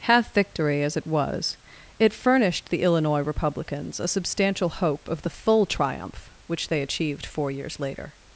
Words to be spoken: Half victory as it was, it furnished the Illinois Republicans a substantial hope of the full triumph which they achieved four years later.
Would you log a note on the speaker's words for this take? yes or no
no